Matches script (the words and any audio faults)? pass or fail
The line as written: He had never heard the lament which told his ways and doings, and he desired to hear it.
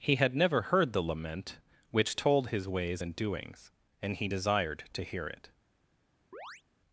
fail